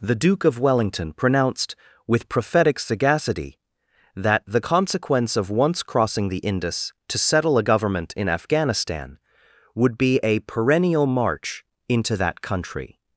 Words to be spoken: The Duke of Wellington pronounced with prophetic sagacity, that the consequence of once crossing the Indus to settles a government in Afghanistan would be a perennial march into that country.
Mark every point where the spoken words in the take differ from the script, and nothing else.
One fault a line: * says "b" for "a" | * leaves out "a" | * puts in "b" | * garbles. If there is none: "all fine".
* says "settle" for "settles"